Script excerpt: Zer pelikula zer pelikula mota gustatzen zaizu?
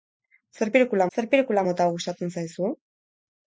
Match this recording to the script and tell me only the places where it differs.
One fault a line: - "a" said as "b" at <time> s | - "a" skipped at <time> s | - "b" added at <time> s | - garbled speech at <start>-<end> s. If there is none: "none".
none